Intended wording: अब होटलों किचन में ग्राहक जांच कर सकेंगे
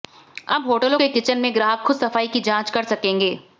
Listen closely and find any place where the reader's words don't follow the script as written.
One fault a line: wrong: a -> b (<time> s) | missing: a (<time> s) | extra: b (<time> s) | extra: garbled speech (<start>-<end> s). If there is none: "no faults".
extra: के (0.9 s)
extra: खुद सफाई की (1.8 s)